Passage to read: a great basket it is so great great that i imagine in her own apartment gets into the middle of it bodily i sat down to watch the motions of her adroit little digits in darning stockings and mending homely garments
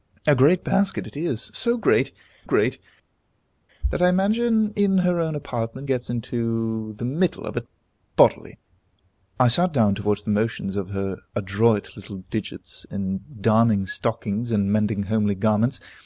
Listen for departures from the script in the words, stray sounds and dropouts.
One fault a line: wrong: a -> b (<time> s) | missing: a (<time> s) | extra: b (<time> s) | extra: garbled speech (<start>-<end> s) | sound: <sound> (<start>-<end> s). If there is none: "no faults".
no faults